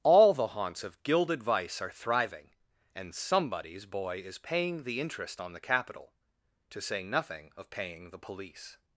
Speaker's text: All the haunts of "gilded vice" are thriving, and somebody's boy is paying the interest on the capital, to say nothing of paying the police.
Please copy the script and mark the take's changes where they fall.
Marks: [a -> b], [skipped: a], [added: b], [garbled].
All the haunts of "gilded vice" are thriving, and somebody's boy is paying the interest on the capital, to say nothing of paying the police.